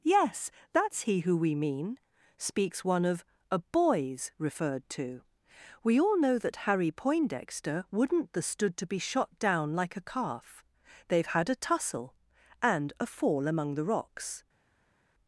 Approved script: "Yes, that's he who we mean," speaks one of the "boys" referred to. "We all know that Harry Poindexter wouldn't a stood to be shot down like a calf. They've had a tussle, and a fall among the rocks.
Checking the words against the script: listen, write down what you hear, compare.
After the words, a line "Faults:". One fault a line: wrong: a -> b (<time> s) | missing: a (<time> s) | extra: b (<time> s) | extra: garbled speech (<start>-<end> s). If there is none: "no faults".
"Yes, that's he who we mean," speaks one of a "boys" referred to. "We all know that Harry Poindexter wouldn't the stood to be shot down like a calf. They've had a tussle, and a fall among the rocks.
Faults:
wrong: the -> a (3.5 s)
wrong: a -> the (8.3 s)